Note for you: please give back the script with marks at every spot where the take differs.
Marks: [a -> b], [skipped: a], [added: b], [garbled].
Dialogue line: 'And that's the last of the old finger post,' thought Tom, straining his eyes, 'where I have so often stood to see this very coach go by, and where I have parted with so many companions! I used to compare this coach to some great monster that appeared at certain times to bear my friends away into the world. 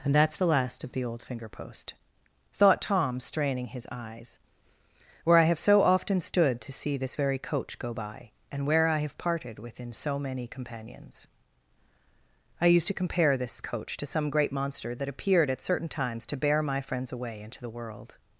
'And that's the last of the old finger post,' thought Tom, straining his eyes, 'where I have so often stood to see this very coach go by, and where I have parted [with -> within] so many companions! I used to compare this coach to some great monster that appeared at certain times to bear my friends away into the world.